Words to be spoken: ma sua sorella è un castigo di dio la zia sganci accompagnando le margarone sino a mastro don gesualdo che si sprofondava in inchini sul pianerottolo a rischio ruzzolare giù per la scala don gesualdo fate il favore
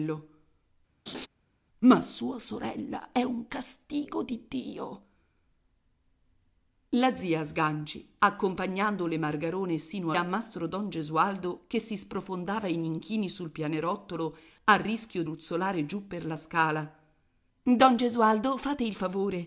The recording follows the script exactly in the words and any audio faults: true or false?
false